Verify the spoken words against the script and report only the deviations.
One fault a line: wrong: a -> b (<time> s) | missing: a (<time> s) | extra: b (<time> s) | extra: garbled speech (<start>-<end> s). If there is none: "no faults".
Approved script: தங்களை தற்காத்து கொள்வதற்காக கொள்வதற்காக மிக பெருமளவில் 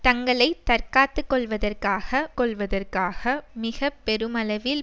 no faults